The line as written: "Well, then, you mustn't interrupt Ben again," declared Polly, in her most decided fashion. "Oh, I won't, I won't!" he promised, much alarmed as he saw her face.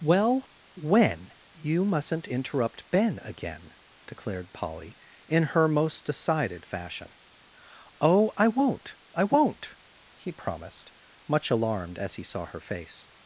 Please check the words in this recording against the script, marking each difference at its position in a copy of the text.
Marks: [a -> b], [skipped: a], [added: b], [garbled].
"Well, [then, -> when] you mustn't interrupt Ben again," declared Polly, in her most decided fashion. "Oh, I won't, I won't!" he promised, much alarmed as he saw her face.